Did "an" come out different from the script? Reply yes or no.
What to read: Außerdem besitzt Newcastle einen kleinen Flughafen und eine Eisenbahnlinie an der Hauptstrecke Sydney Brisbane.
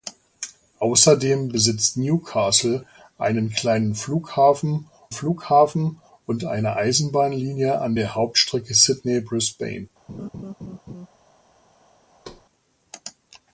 no